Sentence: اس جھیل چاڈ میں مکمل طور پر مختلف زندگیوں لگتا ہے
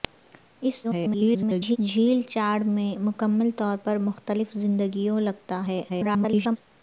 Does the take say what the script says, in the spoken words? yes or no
no